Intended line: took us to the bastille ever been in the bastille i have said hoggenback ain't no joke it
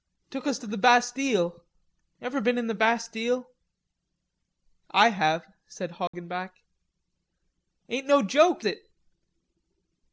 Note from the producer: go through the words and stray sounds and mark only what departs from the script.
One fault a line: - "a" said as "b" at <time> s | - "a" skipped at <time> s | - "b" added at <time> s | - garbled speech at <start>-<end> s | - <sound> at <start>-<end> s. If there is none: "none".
- dropout at 6.1-6.1 s